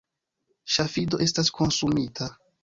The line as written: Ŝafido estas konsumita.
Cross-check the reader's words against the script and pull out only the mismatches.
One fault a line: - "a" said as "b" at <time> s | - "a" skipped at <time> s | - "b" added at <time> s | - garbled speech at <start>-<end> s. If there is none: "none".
none